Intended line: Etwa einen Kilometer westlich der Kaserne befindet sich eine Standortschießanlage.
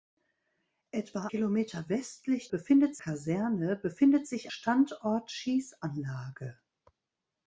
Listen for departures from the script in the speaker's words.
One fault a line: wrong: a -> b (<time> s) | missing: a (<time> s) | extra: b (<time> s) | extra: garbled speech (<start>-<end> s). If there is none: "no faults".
missing: einen (1.3 s)
wrong: der -> befindet (2.5 s)
missing: eine (4.5 s)